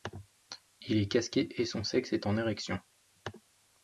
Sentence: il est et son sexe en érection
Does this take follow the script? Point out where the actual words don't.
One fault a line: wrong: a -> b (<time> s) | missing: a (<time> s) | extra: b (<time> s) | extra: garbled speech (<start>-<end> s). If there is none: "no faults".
extra: casqué (1.1 s)
extra: est (2.1 s)